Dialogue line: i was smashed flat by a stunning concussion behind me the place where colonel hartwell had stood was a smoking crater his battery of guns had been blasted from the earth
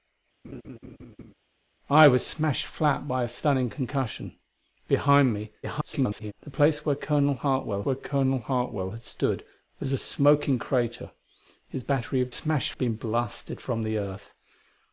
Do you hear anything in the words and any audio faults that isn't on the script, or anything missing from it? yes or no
yes